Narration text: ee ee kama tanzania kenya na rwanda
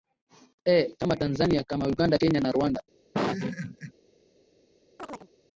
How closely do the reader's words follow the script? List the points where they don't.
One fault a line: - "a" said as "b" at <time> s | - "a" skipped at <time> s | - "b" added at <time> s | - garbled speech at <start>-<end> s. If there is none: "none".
- "ee" said as "kama tanzania" at 1.0 s
- "tanzania" said as "uganda" at 1.9 s